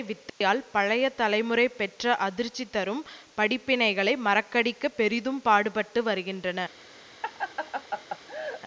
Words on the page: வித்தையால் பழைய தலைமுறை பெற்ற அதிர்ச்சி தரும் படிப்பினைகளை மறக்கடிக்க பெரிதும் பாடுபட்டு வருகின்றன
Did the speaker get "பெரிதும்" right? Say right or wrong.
right